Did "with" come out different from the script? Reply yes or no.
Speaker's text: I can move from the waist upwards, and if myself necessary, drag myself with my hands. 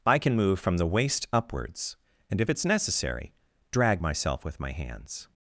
no